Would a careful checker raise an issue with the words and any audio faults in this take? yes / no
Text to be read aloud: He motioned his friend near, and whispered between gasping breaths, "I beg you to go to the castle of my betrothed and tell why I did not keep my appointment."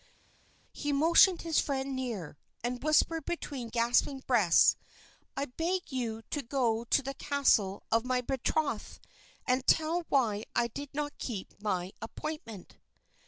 no